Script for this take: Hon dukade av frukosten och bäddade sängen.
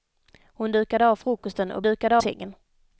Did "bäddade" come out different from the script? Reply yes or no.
yes